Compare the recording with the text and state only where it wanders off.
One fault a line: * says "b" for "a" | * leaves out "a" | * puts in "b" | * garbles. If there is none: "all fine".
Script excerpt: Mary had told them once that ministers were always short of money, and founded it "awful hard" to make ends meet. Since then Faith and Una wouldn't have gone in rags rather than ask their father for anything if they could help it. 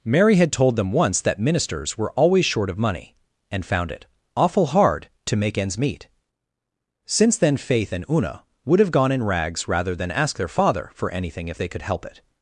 * says "found" for "founded"
* says "would" for "wouldn't"